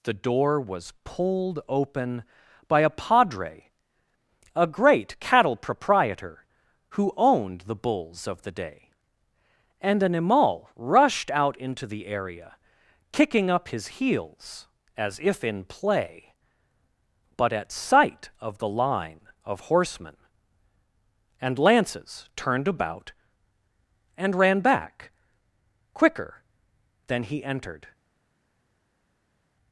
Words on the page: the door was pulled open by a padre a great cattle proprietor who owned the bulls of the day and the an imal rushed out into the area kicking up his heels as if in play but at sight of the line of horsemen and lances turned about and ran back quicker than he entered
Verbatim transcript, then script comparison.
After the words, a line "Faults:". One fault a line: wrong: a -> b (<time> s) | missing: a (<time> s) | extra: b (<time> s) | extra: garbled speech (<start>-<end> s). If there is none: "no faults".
the door was pulled open by a padre a great cattle proprietor who owned the bulls of the day and an imal rushed out into the area kicking up his heels as if in play but at sight of the line of horsemen and lances turned about and ran back quicker than he entered
Faults:
missing: the (10.0 s)